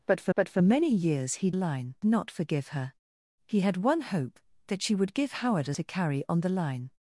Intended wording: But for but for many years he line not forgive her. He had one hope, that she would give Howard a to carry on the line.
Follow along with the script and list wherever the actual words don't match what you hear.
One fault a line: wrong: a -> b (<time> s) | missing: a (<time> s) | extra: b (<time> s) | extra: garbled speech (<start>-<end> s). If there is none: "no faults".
no faults